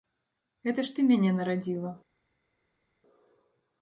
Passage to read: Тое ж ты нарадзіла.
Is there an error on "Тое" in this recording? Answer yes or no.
yes